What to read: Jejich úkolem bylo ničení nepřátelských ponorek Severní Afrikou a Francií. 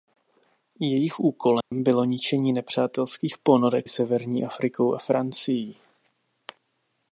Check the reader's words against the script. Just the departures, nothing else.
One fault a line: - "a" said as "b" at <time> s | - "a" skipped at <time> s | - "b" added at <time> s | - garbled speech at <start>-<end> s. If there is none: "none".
none